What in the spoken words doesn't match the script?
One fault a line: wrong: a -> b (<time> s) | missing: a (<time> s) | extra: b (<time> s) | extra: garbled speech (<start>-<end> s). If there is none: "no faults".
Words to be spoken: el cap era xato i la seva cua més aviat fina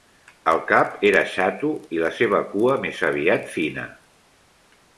no faults